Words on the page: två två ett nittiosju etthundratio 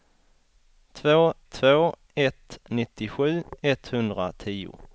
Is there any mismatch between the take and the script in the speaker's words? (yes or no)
no